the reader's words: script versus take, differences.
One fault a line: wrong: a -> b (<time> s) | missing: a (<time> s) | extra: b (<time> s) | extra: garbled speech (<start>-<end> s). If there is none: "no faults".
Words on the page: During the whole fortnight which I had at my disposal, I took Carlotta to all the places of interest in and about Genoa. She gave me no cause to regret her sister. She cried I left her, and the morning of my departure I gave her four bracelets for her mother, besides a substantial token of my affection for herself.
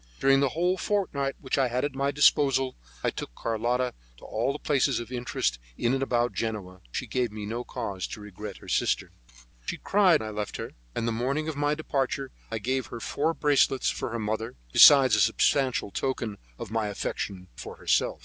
no faults